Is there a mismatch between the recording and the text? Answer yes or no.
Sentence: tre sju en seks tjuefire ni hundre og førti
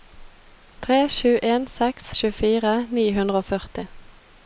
no